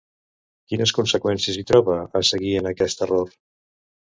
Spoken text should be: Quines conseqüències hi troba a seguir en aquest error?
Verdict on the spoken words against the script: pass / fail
pass